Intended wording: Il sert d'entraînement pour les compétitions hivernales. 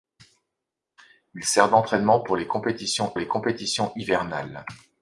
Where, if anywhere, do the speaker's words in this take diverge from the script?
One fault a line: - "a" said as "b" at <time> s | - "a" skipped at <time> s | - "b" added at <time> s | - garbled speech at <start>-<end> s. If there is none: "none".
- "les compétitions" added at 3.2 s